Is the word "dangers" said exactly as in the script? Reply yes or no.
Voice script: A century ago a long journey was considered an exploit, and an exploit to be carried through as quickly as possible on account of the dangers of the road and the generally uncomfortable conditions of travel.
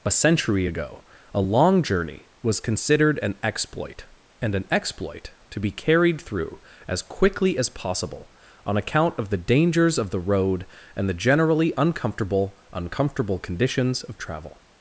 yes